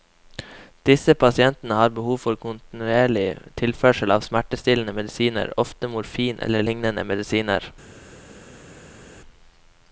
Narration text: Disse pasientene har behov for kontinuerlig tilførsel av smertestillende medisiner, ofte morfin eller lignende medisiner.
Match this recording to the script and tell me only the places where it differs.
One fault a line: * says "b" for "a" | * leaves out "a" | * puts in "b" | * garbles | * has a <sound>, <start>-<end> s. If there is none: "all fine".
all fine